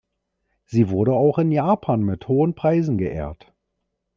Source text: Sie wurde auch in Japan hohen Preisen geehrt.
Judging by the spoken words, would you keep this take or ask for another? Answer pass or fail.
fail